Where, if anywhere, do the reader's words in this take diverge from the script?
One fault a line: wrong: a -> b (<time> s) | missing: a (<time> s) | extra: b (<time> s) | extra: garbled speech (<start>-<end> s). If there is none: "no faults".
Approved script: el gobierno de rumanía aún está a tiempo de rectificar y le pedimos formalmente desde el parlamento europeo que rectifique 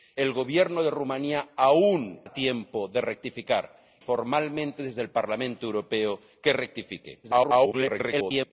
missing: está (2.2 s)
missing: y le pedimos (3.8 s)
extra: garbled speech (7.2-8.5 s)